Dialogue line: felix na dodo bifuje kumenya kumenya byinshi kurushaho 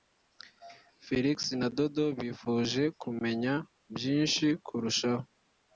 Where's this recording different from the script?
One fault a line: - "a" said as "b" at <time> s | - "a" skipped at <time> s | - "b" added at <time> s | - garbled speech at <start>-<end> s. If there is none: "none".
- "kumenya" skipped at 3.5 s